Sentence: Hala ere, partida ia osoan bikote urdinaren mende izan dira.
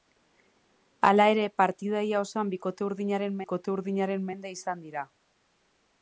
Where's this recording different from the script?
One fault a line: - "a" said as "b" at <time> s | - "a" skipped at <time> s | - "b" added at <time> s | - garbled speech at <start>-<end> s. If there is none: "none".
- "bikote urdinaren" added at 3.4 s